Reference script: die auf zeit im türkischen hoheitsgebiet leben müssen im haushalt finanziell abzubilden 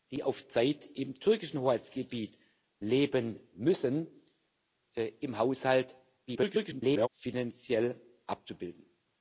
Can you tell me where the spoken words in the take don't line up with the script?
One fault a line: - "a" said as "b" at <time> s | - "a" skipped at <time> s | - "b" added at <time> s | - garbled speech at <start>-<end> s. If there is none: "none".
- garbled speech at 6.3-7.1 s